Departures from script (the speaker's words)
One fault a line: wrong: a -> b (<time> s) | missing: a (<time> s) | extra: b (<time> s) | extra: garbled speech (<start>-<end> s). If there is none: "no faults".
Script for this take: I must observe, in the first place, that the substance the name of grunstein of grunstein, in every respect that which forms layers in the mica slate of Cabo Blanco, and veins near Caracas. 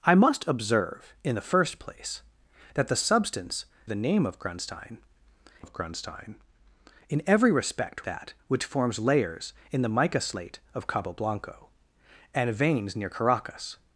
no faults